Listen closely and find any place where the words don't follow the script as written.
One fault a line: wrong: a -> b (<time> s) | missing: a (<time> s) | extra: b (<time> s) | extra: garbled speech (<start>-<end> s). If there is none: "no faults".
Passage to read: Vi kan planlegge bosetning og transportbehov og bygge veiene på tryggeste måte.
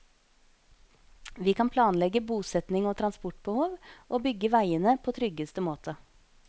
no faults